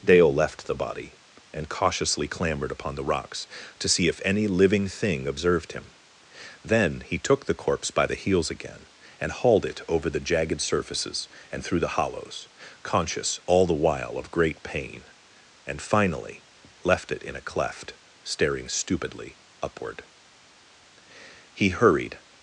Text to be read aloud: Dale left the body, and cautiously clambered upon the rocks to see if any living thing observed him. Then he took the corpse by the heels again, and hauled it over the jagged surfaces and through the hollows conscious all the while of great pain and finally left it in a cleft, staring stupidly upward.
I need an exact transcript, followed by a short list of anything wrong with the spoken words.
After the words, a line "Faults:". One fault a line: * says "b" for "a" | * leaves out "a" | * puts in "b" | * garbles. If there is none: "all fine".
Dale left the body, and cautiously clambered upon the rocks to see if any living thing observed him. Then he took the corpse by the heels again, and hauled it over the jagged surfaces and through the hollows conscious all the while of great pain and finally left it in a cleft, staring stupidly upward. He hurried
Faults:
* puts in "He hurried"